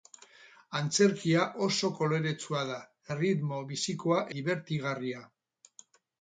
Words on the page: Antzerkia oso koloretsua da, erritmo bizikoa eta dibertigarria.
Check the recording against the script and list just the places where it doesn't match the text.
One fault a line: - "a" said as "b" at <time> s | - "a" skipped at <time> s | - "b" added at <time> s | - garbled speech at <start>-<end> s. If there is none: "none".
- "eta" skipped at 4.3 s